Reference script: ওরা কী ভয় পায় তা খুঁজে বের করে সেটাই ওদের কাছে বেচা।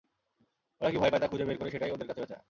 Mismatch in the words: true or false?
false